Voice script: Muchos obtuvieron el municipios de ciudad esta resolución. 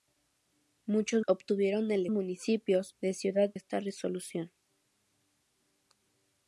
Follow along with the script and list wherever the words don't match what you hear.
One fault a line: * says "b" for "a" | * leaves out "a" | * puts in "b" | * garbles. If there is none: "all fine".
all fine